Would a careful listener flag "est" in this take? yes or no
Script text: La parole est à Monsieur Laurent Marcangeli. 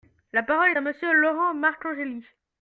yes